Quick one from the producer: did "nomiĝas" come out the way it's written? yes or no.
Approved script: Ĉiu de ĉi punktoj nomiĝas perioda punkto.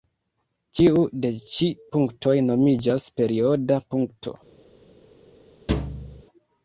yes